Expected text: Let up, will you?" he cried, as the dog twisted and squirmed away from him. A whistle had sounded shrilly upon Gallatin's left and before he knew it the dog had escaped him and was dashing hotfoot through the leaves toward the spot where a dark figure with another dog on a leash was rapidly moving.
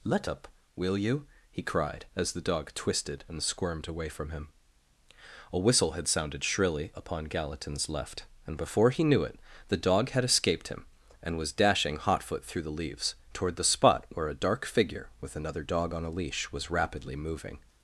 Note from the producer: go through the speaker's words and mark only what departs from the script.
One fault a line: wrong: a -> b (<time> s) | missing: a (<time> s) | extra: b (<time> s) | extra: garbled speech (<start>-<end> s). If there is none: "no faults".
no faults